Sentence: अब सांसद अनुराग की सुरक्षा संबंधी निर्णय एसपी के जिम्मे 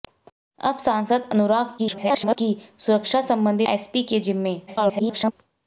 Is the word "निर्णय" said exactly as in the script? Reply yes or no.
no